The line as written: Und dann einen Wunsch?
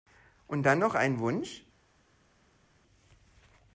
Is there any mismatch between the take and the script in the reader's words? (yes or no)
yes